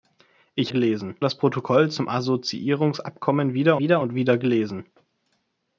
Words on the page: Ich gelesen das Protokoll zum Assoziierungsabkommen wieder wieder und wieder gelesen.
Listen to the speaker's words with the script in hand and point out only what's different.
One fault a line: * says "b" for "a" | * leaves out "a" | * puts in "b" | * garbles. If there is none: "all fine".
all fine